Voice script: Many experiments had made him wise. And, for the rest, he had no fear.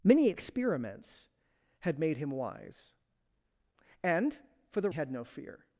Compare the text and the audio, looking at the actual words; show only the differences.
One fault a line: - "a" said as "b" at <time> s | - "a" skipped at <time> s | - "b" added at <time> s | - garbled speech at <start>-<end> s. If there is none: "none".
- "rest he" skipped at 4.9 s